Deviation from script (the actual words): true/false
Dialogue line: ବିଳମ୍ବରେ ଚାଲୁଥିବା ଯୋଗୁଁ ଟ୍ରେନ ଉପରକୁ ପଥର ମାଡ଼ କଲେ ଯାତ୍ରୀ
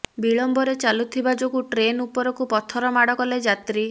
false